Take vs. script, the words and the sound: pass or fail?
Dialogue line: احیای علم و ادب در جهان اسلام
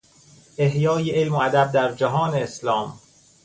pass